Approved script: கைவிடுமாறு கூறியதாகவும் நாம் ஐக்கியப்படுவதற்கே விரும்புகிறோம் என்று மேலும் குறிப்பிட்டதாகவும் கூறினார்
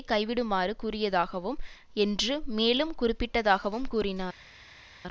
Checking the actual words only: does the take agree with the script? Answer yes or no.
no